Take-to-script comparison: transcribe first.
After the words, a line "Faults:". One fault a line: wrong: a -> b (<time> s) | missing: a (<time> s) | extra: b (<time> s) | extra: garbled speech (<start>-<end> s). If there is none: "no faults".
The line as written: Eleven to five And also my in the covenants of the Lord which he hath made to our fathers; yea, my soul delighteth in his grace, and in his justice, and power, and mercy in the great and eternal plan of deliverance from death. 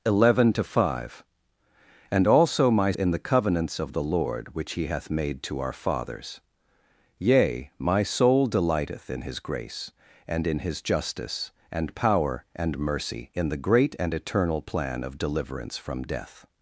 Eleven to five And also my in the covenants of the Lord which he hath made to our fathers; yea, my soul delighteth in his grace, and in his justice, and power, and mercy in the great and eternal plan of deliverance from death.
Faults:
no faults